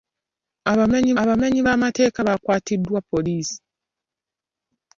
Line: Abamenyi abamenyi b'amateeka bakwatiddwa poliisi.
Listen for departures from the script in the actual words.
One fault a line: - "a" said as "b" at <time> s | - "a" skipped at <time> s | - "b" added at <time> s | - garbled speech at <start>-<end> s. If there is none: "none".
none